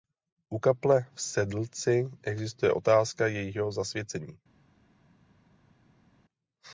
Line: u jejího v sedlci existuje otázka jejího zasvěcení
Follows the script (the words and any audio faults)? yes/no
no